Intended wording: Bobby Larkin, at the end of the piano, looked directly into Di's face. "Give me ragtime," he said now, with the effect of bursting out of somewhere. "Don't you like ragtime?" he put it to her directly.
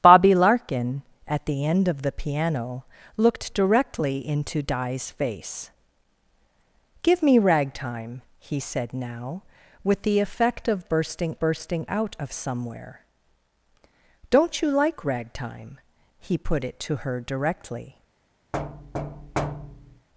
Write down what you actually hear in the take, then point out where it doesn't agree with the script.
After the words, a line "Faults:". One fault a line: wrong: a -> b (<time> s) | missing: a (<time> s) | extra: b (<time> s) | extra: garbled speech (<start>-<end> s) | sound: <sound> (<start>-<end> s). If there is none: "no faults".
Bobby Larkin, at the end of the piano, looked directly into Di's face. "Give me ragtime," he said now, with the effect of bursting bursting out of somewhere. "Don't you like ragtime?" he put it to her directly.
Faults:
extra: bursting (11.4 s)
sound: thud (18.5-20.1 s)